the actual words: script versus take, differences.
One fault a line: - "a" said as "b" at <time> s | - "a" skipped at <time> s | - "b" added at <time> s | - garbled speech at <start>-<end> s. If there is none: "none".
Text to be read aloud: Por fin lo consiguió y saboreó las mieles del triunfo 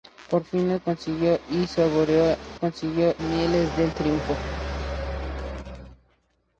- "las" said as "consiguió" at 2.5 s